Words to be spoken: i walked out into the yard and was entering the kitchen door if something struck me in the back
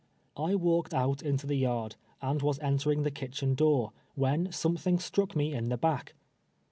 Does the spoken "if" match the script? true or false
false